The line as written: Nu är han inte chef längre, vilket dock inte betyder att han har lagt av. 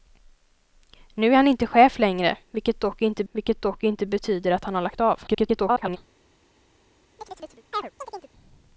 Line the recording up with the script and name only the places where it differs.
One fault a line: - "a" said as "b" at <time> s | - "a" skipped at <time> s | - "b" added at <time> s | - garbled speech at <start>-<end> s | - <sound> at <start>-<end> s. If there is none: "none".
- "vilket dock inte" added at 3.3 s
- garbled speech at 5.3-6.0 s
- chirp at 7.2-8.3 s